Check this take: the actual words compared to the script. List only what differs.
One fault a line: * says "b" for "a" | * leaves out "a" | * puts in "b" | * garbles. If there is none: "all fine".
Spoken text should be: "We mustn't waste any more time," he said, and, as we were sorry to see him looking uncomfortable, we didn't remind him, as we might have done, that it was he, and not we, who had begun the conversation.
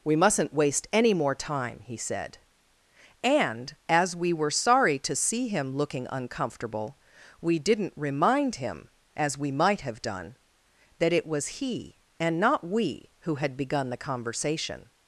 all fine